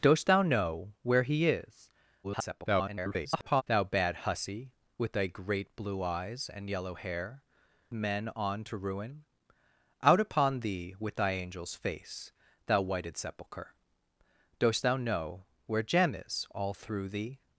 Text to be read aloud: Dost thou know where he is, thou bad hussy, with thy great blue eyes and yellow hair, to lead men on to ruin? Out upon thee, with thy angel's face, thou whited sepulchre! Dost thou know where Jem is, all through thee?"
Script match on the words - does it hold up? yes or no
no